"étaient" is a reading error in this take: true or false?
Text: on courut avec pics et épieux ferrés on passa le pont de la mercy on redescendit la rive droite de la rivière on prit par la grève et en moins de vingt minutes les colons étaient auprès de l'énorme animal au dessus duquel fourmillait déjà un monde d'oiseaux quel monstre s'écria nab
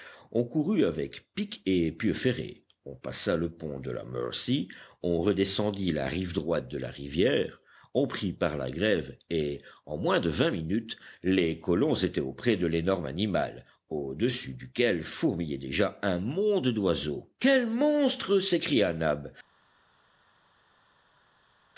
false